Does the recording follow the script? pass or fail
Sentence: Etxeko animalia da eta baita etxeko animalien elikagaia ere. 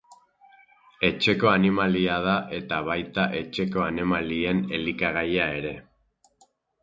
pass